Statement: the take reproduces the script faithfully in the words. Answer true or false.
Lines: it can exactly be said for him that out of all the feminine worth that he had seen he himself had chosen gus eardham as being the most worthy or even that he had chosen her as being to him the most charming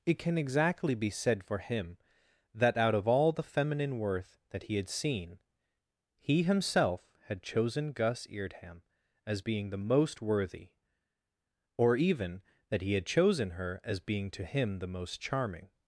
true